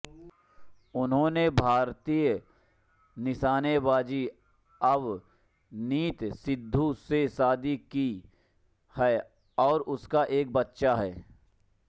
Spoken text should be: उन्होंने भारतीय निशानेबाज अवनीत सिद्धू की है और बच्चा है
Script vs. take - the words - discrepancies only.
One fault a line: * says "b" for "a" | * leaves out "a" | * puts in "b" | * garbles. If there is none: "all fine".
* puts in "से शादी"
* puts in "उनका एक"